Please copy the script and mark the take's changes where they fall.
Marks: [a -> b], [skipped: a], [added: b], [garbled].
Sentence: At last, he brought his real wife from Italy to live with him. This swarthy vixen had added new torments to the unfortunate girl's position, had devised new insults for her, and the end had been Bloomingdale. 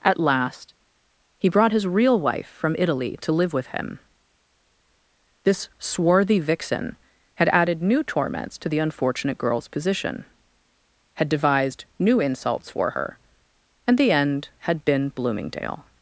At last, he brought his real wife from Italy to live with him. This swarthy vixen had added new torments to the unfortunate girl's position, had devised new insults for her, and the end had been Bloomingdale.